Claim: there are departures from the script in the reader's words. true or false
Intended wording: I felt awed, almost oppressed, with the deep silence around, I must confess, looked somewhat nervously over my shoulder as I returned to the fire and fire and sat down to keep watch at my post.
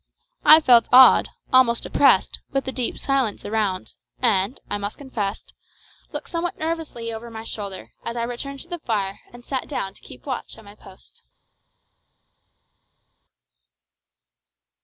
true